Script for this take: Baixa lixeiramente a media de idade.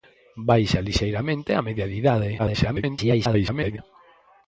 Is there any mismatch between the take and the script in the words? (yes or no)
yes